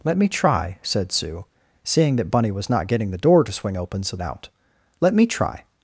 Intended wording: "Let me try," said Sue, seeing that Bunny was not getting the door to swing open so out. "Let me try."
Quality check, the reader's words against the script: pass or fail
pass